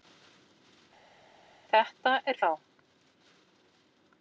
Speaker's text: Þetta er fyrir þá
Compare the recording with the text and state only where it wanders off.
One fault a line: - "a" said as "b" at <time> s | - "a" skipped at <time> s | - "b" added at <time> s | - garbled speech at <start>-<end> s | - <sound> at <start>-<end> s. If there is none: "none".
- "fyrir" skipped at 2.4 s